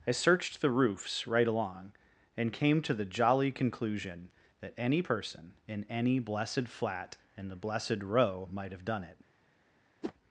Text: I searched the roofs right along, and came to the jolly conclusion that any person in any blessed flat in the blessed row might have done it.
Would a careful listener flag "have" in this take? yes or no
no